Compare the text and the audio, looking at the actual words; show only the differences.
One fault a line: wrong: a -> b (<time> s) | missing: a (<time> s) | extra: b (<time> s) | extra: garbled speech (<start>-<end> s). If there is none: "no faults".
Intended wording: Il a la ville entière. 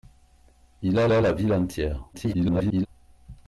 extra: a (1.1 s)
extra: garbled speech (2.1-2.9 s)